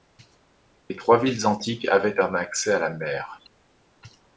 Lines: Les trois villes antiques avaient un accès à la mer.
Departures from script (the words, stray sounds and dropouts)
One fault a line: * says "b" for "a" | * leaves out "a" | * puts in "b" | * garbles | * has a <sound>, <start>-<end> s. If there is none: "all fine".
all fine